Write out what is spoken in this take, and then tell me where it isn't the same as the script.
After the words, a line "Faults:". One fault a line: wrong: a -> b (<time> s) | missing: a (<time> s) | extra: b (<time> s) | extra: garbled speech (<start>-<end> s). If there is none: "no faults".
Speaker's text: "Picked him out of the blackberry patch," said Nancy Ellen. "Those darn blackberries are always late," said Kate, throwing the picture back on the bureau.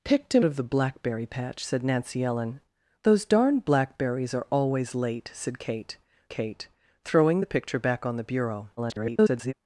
"Picked him of the blackberry patch," said Nancy Ellen. "Those darn blackberries are always late," said Kate Kate, throwing the picture back on the bureau. [garbled]
Faults:
missing: out (0.5 s)
extra: Kate (6.3 s)
extra: garbled speech (8.8-9.5 s)